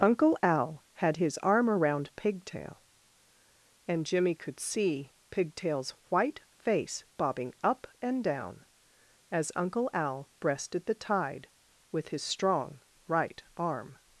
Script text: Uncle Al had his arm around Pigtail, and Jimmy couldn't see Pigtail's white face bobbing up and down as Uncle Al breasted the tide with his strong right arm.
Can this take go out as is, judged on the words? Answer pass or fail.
fail